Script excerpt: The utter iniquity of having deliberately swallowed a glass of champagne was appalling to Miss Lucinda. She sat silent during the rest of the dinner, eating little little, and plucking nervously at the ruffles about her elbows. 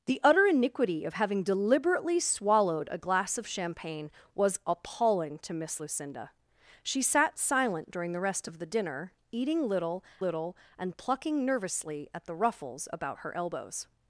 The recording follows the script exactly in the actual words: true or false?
true